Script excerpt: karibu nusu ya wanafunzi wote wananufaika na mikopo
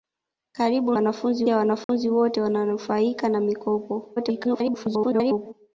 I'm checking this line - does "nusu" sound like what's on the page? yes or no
no